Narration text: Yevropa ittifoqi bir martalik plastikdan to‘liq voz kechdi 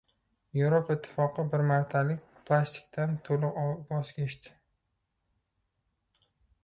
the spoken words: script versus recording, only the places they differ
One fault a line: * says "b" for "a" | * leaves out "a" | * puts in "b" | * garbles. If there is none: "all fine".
all fine